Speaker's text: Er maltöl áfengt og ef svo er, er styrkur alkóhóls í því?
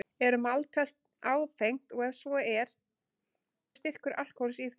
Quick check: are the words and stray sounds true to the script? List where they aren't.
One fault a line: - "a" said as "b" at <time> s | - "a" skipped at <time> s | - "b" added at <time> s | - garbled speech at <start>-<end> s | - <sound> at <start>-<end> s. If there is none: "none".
none